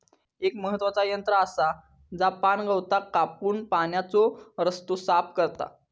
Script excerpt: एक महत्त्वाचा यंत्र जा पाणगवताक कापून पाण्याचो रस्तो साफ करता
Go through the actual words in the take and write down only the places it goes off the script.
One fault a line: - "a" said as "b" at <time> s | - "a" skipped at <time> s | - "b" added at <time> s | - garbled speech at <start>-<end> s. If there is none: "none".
- "आसा" added at 1.4 s